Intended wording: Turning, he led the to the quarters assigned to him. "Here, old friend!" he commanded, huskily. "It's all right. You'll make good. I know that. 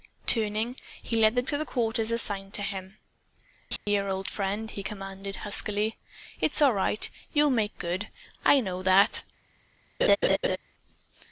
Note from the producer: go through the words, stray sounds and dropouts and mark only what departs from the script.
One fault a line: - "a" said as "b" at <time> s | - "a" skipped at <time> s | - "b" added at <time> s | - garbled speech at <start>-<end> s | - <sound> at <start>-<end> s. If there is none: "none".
- dropout at 3.8-3.9 s
- laugh at 10.0-10.6 s